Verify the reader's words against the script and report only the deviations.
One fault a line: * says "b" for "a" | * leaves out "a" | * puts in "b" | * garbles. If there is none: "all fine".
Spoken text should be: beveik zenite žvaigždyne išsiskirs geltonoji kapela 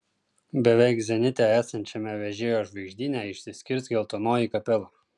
* puts in "esančiame vežėjo"